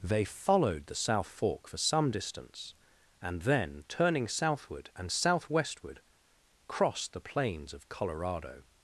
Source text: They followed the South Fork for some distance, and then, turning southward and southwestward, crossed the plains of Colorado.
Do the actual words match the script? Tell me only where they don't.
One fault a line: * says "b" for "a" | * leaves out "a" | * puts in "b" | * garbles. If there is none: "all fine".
all fine